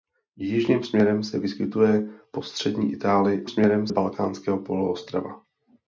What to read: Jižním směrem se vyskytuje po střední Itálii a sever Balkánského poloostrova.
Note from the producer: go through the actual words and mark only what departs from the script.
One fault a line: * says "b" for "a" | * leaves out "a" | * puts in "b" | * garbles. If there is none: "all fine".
* says "směrem" for "sever"